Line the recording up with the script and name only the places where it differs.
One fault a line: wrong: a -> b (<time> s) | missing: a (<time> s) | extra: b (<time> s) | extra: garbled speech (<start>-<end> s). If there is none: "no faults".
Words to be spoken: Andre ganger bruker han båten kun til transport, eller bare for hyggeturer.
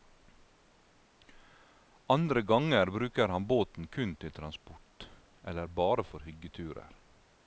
no faults